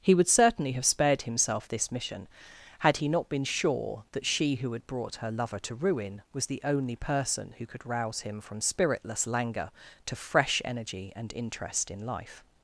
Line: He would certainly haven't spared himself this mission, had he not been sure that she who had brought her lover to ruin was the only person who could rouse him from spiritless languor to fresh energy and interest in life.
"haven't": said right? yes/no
no